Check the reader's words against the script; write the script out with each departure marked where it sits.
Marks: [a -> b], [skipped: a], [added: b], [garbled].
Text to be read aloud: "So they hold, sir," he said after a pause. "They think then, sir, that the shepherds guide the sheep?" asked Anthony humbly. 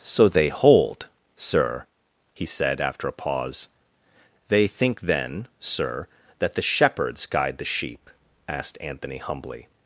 "So they hold, sir," he said after a pause. "They think then, sir, that the shepherds guide the sheep?" asked Anthony humbly.